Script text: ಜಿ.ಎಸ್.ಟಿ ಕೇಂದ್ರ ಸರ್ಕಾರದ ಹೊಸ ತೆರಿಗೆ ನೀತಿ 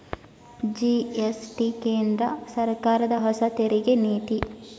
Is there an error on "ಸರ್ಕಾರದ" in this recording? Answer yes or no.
no